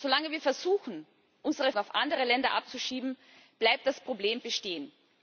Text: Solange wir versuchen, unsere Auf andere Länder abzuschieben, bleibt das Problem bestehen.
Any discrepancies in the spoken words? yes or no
no